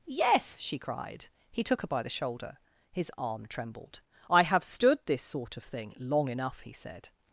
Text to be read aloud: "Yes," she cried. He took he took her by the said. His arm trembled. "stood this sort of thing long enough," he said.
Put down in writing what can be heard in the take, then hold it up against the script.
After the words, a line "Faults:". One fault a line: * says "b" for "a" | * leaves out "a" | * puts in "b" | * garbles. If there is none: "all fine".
"Yes," she cried. He took her by the shoulder. His arm trembled. "I have stood this sort of thing long enough," he said.
Faults:
* leaves out "he took"
* says "shoulder" for "said"
* puts in "I have"